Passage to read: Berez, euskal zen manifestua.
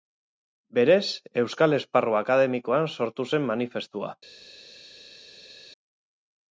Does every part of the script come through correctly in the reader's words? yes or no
no